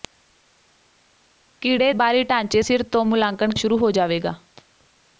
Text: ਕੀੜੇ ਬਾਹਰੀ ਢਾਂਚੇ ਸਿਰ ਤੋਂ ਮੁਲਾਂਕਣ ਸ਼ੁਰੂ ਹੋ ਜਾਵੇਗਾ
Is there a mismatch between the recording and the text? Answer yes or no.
no